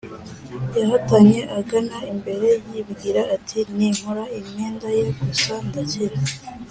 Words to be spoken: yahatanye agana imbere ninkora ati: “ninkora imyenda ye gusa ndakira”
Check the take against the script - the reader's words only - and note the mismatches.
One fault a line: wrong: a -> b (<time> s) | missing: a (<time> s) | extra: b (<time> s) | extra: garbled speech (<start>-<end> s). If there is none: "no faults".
wrong: ninkora -> yibwira (2.7 s)